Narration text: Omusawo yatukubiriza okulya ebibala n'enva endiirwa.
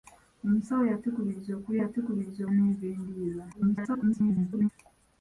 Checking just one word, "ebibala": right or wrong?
wrong